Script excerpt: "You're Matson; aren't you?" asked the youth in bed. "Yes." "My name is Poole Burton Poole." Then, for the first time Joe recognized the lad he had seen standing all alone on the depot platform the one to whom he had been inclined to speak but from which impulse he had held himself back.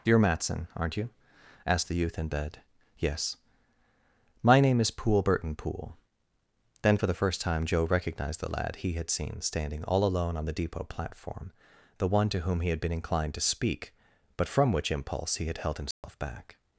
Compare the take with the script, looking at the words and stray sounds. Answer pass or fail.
fail